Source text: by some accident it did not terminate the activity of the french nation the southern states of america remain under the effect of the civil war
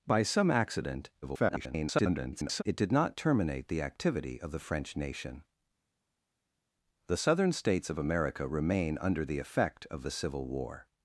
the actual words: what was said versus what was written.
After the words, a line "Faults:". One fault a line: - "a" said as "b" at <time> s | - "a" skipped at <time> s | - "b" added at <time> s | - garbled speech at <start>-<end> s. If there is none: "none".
by some accident [garbled] it did not terminate the activity of the french nation the southern states of america remain under the effect of the civil war
Faults:
- garbled speech at 1.2-2.6 s